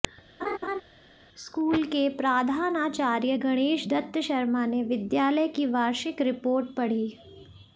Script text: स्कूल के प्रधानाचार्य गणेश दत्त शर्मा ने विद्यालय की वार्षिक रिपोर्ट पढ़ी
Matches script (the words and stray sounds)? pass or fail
fail